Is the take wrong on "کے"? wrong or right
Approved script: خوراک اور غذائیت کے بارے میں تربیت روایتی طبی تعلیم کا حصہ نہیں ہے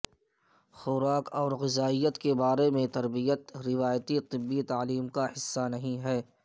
right